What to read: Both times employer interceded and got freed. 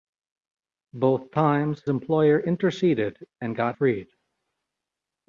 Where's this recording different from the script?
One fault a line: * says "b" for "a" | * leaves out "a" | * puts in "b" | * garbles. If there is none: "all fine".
all fine